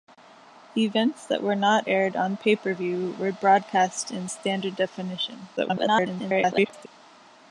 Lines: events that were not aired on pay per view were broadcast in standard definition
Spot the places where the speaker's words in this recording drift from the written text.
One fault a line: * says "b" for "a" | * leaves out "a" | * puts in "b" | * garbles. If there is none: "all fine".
* garbles